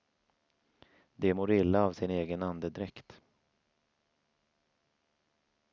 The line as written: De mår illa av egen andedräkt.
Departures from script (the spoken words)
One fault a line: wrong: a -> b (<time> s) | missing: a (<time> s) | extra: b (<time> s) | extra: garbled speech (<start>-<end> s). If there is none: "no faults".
extra: sin (1.9 s)